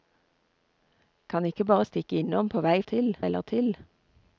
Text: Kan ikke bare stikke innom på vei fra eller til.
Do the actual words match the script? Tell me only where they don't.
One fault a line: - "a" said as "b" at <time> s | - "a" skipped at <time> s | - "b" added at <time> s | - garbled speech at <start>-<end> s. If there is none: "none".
- "fra" said as "til" at 2.8 s